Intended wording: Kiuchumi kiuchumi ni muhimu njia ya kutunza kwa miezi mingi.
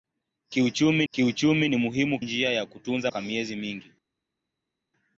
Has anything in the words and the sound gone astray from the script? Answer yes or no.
no